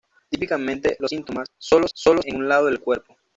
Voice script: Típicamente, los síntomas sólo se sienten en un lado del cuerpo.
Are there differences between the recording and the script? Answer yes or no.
yes